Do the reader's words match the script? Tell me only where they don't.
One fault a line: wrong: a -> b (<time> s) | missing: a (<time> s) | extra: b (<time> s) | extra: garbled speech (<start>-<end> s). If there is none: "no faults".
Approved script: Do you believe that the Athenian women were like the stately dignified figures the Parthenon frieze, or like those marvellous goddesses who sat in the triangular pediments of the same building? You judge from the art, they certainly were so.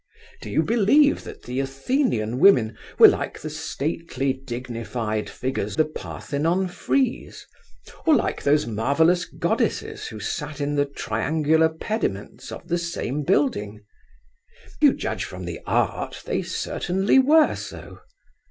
no faults